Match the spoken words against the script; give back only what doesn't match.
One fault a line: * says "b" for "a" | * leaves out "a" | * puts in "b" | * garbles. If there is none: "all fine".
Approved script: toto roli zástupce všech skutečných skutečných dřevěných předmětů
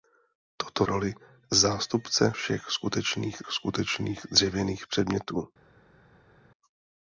all fine